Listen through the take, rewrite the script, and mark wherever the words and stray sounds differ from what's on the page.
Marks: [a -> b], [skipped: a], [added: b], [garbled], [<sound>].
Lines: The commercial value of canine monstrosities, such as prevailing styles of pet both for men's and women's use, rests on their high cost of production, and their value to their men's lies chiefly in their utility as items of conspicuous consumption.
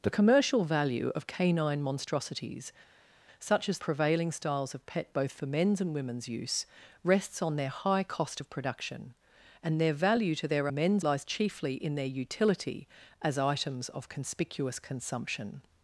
The commercial value of canine monstrosities, such as prevailing styles of pet both for men's and women's use, rests on their high cost of production, and their value to their men's lies chiefly in their utility as items of conspicuous consumption.